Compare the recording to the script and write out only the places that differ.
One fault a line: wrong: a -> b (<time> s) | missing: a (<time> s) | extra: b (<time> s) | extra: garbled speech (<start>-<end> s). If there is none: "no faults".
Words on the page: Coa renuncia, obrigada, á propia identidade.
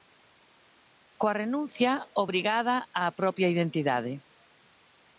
no faults